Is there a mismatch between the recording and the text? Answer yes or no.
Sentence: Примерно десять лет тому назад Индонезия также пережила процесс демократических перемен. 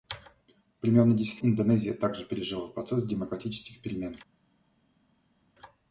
yes